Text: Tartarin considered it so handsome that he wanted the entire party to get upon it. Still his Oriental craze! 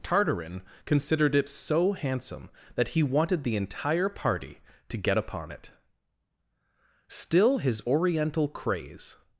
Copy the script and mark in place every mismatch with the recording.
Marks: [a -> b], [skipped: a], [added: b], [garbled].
Tartarin considered it so handsome that he wanted the entire party to get upon it. Still his Oriental craze!